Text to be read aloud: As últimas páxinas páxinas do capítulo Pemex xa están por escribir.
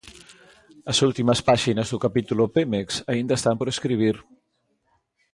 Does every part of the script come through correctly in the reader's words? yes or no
no